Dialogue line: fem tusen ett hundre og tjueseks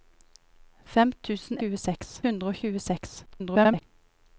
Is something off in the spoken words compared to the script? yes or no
yes